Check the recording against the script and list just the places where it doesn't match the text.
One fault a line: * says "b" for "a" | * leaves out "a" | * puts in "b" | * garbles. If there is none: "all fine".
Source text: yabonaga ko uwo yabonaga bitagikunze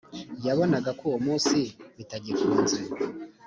* says "munsi" for "yabonaga"